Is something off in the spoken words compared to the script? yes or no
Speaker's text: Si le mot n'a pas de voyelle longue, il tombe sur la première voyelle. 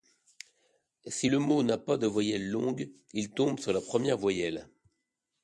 no